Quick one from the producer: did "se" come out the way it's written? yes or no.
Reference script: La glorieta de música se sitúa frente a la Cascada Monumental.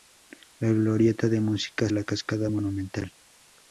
no